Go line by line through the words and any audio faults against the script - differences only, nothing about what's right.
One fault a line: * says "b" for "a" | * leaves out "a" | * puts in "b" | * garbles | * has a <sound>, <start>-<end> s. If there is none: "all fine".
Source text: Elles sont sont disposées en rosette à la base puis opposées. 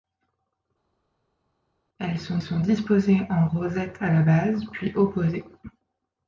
all fine